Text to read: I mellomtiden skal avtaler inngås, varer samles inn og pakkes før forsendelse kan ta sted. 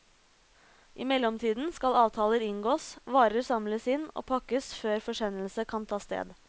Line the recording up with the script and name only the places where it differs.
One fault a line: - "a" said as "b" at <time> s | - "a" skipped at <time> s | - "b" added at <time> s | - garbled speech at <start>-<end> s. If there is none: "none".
none